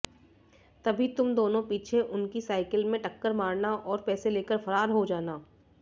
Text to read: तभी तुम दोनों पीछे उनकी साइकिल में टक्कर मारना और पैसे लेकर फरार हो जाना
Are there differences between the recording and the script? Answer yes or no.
no